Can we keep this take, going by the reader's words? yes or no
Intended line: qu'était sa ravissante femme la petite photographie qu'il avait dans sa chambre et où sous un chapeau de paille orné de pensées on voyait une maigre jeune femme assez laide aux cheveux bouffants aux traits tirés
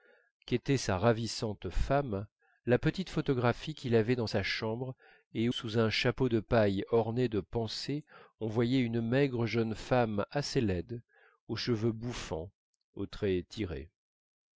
no